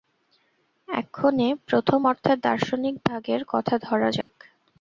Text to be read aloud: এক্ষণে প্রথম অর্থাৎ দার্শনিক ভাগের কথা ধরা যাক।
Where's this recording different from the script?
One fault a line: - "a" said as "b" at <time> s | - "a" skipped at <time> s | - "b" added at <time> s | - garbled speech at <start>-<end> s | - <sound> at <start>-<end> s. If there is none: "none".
- dropout at 4.2-4.3 s